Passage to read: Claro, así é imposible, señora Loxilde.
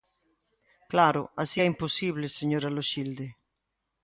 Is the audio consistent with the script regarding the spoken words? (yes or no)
yes